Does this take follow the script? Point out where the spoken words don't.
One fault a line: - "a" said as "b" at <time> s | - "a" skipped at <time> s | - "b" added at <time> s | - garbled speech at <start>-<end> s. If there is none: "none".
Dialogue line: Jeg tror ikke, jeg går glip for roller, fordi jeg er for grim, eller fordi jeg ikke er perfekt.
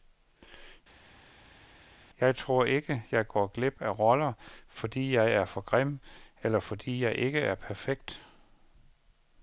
- "for" said as "af" at 3.8 s